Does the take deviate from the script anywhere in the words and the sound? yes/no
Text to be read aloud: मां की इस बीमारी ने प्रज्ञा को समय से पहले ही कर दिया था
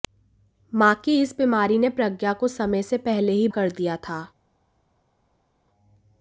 no